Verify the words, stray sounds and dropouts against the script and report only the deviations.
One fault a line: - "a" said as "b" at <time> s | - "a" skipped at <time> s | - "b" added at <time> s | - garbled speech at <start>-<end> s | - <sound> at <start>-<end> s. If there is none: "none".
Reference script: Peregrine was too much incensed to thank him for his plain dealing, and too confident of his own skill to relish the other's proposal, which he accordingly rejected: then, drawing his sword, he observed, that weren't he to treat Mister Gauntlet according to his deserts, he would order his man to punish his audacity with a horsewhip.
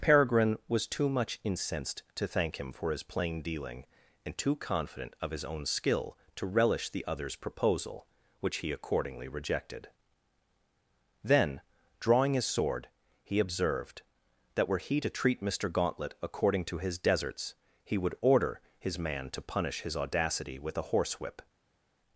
- "weren't" said as "were" at 14.7 s